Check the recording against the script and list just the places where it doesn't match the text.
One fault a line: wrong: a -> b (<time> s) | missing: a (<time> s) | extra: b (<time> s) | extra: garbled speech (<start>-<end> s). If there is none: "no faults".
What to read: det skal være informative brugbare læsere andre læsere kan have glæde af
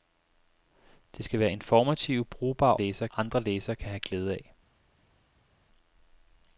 no faults